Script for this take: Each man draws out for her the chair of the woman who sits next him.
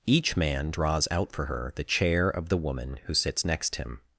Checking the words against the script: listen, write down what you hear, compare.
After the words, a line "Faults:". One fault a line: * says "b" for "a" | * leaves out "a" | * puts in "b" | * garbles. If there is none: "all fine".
Each man draws out for her the chair of the woman who sits next him.
Faults:
all fine